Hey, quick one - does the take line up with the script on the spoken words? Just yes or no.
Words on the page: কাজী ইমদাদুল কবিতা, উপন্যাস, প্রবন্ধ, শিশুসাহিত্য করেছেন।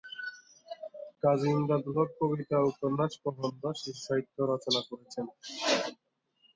no